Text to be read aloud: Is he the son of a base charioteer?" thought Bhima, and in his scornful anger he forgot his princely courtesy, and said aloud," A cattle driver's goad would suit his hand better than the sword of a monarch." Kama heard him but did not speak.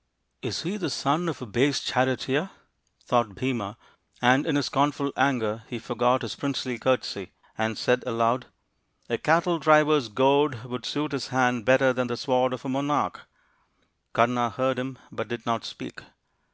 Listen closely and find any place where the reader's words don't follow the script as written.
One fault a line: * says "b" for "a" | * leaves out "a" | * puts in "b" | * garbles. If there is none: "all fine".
all fine